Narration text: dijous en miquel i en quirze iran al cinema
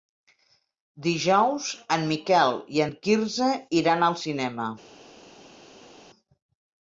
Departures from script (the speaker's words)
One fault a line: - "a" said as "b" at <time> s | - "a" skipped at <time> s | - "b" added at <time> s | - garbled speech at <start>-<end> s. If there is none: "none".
none